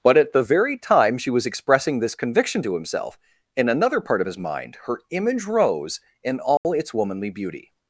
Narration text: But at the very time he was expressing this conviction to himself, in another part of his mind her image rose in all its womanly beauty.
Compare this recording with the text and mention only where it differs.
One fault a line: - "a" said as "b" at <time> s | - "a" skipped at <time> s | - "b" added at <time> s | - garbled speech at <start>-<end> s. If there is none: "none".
- "he" said as "she" at 1.2 s